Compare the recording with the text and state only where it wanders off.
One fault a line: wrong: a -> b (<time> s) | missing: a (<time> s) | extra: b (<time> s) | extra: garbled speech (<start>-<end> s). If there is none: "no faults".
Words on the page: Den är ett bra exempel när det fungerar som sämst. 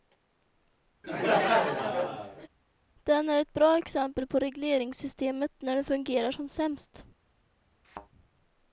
extra: på regleringssystemet (4.3 s)